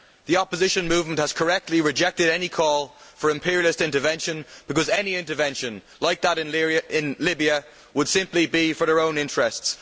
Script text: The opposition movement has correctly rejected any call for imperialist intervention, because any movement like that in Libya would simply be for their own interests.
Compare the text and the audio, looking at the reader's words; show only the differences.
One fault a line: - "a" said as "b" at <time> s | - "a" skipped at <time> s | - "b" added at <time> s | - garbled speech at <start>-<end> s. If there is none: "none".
- "movement" said as "intervention" at 5.2 s